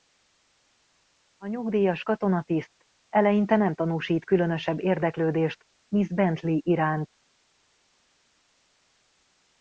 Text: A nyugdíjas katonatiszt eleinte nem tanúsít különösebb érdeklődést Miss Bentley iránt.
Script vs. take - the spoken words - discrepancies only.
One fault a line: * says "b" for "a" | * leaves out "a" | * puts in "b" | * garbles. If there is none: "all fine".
all fine